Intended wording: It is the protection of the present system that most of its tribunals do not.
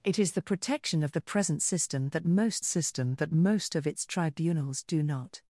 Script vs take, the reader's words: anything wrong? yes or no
yes